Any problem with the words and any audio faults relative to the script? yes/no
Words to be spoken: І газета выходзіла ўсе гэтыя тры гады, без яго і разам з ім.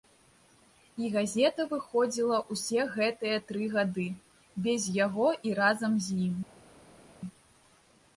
no